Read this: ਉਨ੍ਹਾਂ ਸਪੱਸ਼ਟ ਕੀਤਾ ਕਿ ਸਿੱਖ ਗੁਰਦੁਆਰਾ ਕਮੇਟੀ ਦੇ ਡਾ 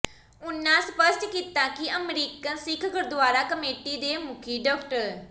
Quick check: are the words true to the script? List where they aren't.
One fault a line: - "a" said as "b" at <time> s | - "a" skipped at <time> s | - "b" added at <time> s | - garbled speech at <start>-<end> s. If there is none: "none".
- "ਅਮਰੀਕਨ" added at 1.9 s
- "ਮੁਖੀ" added at 4.2 s